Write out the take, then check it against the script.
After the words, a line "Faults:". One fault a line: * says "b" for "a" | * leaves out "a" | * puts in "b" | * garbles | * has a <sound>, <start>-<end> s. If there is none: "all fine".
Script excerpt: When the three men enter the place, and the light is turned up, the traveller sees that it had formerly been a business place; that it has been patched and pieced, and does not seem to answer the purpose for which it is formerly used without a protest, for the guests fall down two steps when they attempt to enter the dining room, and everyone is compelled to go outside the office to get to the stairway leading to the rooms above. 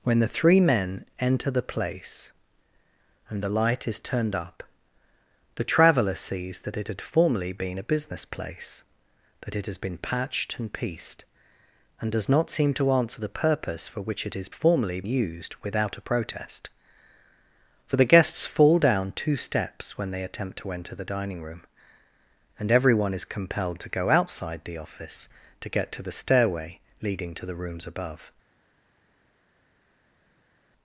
When the three men enter the place, and the light is turned up, the traveller sees that it had formerly been a business place; that it has been patched and pieced, and does not seem to answer the purpose for which it is formerly used without a protest, for the guests fall down two steps when they attempt to enter the dining room, and everyone is compelled to go outside the office to get to the stairway leading to the rooms above.
Faults:
all fine